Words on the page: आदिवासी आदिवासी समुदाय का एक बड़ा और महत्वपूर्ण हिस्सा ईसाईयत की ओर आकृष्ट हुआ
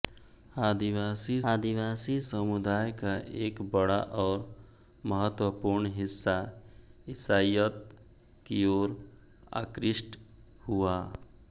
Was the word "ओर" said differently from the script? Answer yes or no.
no